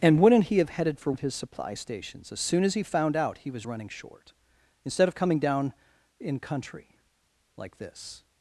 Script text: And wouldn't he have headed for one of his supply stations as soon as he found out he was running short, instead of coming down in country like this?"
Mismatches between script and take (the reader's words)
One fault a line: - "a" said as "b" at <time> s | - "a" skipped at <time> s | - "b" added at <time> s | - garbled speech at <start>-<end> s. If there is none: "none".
- "one" skipped at 1.1 s